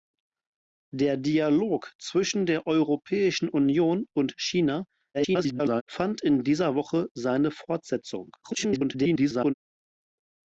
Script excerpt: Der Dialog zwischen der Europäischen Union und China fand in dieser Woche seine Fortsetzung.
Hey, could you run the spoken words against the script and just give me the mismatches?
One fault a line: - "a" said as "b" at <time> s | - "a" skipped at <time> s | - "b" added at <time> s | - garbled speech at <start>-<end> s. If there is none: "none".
- garbled speech at 5.1-5.8 s
- garbled speech at 8.4-9.5 s